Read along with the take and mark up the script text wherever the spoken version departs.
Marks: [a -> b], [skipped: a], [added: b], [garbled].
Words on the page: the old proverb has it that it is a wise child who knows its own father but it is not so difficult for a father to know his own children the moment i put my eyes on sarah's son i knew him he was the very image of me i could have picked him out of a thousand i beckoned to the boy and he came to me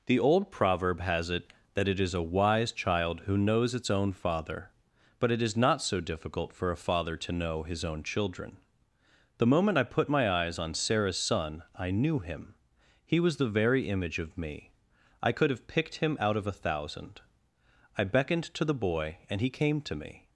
the old proverb has it that it is a wise child who knows its own father but it is not so difficult for a father to know his own children the moment i put my eyes on sarah's son i knew him he was the very image of me i could have picked him out of a thousand i beckoned to the boy and he came to me